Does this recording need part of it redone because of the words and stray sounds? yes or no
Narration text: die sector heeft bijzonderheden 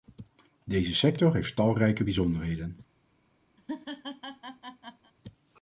yes